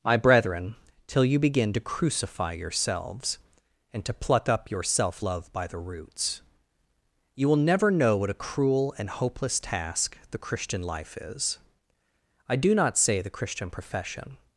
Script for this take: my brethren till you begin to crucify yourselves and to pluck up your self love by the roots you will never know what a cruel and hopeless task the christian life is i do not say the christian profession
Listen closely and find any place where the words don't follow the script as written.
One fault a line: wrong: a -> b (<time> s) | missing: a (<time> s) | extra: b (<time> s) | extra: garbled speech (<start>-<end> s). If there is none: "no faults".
no faults